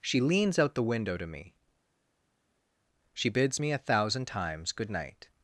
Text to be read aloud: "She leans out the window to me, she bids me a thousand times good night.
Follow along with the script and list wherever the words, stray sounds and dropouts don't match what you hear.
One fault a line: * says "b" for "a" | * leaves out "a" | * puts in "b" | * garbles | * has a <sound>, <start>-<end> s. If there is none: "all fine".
all fine